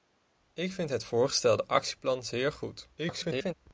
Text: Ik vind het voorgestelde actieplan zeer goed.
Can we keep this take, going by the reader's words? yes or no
no